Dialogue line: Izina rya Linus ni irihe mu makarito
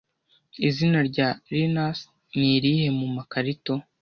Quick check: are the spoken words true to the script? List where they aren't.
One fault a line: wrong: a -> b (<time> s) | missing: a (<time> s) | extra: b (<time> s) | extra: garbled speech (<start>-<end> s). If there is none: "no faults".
no faults